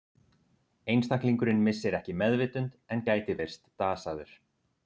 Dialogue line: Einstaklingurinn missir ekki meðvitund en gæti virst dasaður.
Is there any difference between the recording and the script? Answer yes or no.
no